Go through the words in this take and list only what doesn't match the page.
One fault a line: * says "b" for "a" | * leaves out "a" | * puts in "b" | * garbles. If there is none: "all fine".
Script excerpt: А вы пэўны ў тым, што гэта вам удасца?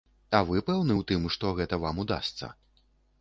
all fine